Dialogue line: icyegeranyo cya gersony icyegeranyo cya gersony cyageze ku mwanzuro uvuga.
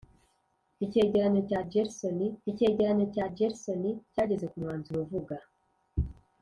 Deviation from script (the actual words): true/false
false